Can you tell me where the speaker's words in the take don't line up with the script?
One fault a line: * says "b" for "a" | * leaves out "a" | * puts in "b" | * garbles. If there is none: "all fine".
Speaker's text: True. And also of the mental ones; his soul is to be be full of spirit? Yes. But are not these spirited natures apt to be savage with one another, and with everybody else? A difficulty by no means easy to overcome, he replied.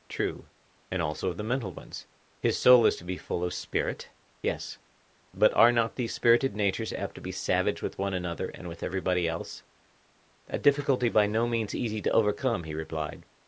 * leaves out "be"